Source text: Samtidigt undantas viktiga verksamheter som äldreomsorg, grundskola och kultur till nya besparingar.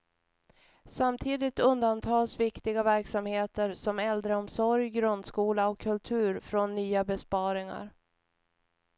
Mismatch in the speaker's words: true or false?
true